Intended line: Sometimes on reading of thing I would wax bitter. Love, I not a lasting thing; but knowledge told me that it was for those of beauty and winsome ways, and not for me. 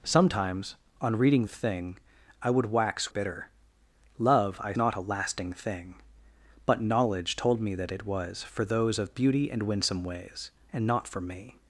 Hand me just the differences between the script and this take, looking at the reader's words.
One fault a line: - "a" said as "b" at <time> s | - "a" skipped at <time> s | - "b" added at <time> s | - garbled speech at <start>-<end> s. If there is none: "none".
none